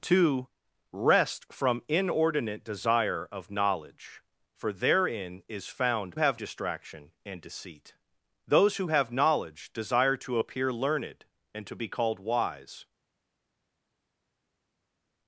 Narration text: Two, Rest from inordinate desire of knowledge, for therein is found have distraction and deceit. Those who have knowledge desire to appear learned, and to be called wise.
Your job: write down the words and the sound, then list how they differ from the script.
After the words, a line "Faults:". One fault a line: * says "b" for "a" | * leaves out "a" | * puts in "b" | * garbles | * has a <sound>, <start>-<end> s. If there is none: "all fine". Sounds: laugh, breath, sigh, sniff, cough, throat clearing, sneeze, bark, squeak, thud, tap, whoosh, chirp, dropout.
Two, Rest from inordinate desire of knowledge, for therein is found have distraction and deceit. Those who have knowledge desire to appear learned, and to be called wise.
Faults:
all fine